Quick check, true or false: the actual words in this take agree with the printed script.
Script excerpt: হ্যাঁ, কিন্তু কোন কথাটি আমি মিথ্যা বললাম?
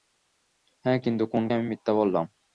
false